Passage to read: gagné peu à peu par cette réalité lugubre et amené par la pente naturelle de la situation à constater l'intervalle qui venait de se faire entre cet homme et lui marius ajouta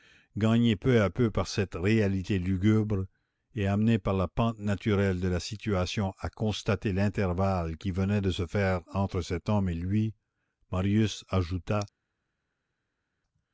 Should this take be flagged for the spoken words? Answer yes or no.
no